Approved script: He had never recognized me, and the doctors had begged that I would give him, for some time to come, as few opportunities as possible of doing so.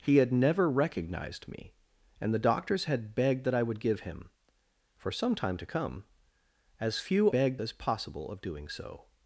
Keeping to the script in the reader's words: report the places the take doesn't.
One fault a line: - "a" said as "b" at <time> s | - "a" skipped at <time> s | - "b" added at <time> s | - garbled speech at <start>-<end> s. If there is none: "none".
- "opportunities" said as "begged" at 7.3 s